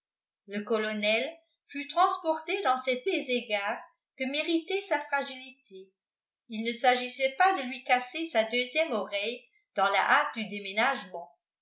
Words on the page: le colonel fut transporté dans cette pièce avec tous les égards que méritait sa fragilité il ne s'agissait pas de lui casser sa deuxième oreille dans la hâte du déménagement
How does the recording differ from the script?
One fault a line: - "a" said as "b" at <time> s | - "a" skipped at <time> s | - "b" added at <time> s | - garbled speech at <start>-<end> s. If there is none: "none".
- "pièce avec tous" skipped at 3.0 s